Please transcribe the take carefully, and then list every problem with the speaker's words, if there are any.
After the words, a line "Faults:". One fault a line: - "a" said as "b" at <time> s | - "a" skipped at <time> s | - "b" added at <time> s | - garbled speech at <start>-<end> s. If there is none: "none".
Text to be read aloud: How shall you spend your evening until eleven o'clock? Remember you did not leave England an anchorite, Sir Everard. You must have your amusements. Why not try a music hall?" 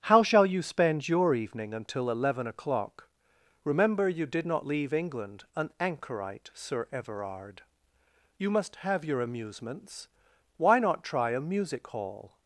How shall you spend your evening until eleven o'clock? Remember you did not leave England an anchorite, Sir Everard. You must have your amusements. Why not try a music hall?"
Faults:
none